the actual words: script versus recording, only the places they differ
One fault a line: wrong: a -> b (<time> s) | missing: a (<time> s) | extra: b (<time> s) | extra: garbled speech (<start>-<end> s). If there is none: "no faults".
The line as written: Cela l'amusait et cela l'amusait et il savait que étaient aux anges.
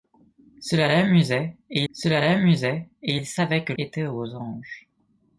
no faults